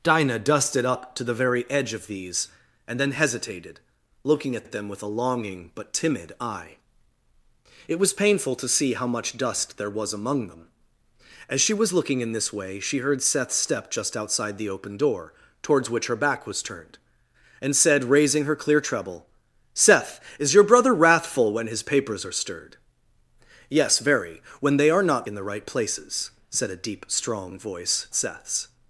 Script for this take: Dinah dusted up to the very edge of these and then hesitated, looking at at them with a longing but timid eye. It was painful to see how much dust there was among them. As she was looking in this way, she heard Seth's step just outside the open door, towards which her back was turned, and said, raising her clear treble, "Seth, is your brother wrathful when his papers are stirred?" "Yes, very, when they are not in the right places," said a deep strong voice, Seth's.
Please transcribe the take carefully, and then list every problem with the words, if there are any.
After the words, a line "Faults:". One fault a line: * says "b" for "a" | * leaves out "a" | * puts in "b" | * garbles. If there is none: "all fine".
Dinah dusted up to the very edge of these and then hesitated, looking at at them with a longing but timid eye. It was painful to see how much dust there was among them. As she was looking in this way, she heard Seth's step just outside the open door, towards which her back was turned, and said, raising her clear treble, "Seth, is your brother wrathful when his papers are stirred?" "Yes, very, when they are not in the right places," said a deep strong voice, Seth's.
Faults:
all fine